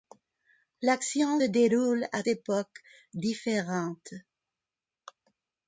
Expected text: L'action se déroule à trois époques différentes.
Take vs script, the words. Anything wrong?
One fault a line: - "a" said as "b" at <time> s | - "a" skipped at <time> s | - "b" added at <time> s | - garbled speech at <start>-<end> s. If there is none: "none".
- "se" skipped at 1.4 s
- "trois" skipped at 2.2 s